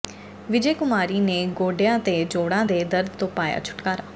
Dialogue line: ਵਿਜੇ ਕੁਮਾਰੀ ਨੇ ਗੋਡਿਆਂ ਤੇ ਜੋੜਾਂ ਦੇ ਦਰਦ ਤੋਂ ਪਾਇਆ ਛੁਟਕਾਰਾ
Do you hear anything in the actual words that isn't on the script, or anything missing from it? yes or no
no